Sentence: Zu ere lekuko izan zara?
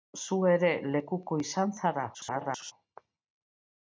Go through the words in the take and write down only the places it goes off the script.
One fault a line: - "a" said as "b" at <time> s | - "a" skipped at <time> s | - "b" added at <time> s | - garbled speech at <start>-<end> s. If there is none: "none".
- garbled speech at 2.1-2.7 s